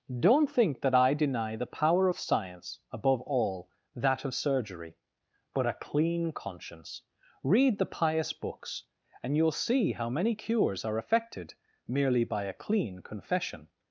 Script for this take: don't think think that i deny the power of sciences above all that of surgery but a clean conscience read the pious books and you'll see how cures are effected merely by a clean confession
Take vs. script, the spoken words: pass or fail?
fail